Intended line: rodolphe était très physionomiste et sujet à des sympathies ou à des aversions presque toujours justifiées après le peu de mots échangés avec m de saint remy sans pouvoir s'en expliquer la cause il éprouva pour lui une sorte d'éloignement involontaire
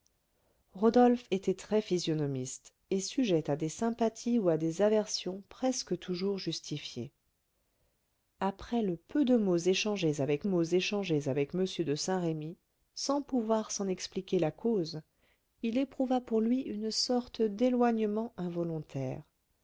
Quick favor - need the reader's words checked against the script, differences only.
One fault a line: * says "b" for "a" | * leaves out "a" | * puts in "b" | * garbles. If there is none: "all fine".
* puts in "mots échangés avec"